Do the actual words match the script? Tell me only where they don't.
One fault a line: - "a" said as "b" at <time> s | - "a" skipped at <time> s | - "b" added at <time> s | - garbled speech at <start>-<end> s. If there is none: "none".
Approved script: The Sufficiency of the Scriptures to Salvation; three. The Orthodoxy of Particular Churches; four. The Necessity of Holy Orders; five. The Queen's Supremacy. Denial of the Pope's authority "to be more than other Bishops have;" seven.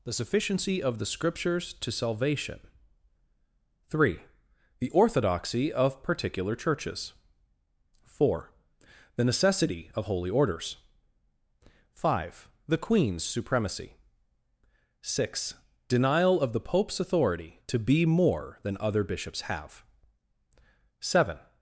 - "six" added at 15.0 s